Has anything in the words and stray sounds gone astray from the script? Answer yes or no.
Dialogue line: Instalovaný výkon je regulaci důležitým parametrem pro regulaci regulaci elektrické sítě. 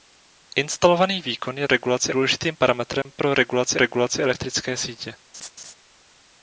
yes